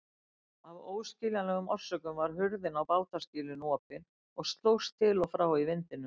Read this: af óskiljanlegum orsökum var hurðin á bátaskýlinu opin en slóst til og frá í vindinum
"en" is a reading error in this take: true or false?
true